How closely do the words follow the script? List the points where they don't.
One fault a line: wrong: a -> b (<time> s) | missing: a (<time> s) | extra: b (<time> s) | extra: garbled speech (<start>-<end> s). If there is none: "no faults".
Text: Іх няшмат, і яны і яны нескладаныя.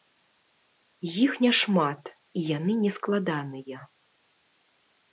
missing: і яны (2.8 s)